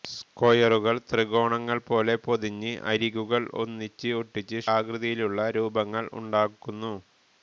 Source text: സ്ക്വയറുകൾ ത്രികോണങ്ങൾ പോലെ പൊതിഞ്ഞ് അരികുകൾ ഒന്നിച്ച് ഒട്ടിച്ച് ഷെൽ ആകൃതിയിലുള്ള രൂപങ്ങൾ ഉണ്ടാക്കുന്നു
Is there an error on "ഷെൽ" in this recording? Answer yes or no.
yes